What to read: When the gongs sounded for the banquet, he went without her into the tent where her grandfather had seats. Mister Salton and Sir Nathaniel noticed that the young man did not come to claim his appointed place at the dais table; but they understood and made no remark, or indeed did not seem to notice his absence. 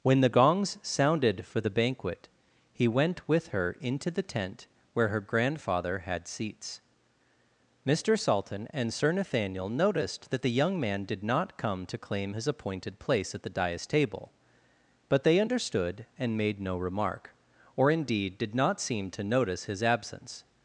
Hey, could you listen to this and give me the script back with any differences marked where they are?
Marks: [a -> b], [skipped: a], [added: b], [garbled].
When the gongs sounded for the banquet, he went [without -> with] her into the tent where her grandfather had seats. Mister Salton and Sir Nathaniel noticed that the young man did not come to claim his appointed place at the dais table; but they understood and made no remark, or indeed did not seem to notice his absence.